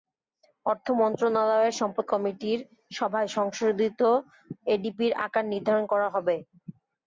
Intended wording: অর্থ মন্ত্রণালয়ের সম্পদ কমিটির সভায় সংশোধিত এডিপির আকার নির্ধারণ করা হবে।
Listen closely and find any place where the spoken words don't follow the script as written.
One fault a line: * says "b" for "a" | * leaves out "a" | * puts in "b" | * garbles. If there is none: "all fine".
all fine